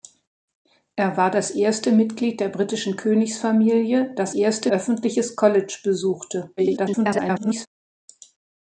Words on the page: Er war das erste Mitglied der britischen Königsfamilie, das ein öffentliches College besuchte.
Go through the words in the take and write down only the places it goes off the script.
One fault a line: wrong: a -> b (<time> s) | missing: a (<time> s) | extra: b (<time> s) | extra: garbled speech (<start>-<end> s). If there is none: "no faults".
wrong: ein -> erste (4.3 s)
extra: garbled speech (6.6-7.7 s)